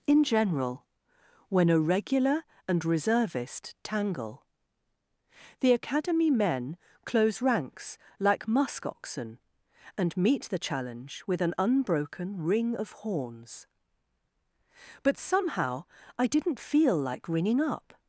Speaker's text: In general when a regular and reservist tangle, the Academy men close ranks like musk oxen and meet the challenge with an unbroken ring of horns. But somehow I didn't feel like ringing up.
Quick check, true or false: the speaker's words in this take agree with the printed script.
true